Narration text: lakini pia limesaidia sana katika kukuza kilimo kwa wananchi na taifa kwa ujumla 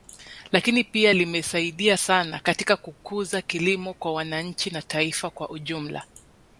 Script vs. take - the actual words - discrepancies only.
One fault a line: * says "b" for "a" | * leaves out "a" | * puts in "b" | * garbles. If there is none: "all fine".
all fine